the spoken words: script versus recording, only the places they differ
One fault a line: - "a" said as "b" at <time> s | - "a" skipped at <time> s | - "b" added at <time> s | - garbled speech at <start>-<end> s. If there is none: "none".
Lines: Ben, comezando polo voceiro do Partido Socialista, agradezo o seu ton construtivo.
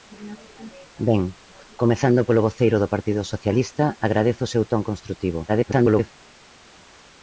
- garbled speech at 5.5-6.1 s